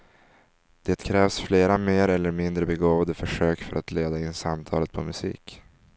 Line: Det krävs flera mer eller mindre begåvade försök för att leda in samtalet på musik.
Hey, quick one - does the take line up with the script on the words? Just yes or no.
yes